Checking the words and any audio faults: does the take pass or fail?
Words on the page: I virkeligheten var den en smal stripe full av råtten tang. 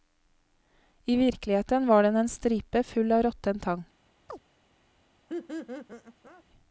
fail